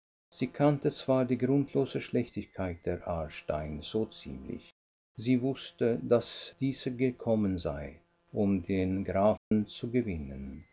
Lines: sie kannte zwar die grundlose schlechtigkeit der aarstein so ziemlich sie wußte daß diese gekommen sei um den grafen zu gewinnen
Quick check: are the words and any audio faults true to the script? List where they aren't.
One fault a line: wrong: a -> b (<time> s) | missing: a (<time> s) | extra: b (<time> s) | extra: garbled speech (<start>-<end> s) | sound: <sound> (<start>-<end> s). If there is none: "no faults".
sound: dropout (9.4-9.5 s)